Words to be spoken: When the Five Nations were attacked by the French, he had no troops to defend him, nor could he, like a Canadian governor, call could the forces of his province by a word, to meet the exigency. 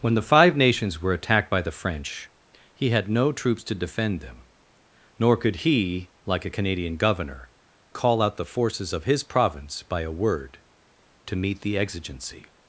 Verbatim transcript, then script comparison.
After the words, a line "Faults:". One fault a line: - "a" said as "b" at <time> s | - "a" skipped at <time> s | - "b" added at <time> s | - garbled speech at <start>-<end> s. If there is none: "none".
When the Five Nations were attacked by the French, he had no troops to defend them, nor could he, like a Canadian governor, call out the forces of his province by a word, to meet the exigency.
Faults:
- "him" said as "them" at 4.2 s
- "could" said as "out" at 8.2 s